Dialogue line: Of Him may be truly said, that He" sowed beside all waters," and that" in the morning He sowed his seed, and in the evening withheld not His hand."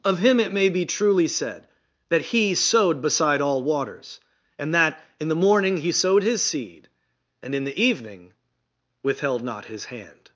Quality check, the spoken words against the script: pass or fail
fail